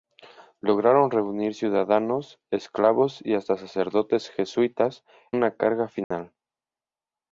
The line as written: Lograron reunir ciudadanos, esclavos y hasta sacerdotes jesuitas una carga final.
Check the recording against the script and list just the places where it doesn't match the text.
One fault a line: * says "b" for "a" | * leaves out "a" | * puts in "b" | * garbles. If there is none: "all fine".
all fine